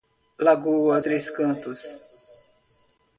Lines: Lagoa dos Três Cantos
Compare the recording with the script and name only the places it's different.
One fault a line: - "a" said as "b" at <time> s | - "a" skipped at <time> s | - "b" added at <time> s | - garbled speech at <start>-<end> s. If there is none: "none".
- "dos" skipped at 1.0 s